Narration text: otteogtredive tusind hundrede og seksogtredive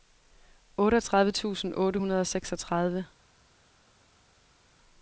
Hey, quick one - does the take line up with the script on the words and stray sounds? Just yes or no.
no